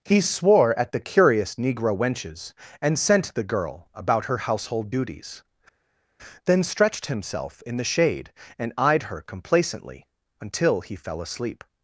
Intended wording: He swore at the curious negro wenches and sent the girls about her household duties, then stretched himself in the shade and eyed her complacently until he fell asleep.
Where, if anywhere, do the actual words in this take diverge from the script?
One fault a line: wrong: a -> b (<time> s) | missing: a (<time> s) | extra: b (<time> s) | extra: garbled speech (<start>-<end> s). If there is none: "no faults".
wrong: girls -> girl (3.4 s)